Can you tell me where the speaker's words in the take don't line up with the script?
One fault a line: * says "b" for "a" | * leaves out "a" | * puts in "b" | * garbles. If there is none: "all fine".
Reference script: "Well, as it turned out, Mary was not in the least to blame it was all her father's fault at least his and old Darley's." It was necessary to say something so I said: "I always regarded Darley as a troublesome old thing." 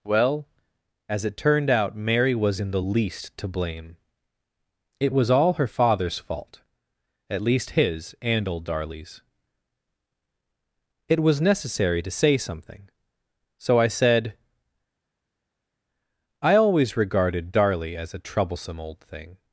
* leaves out "not"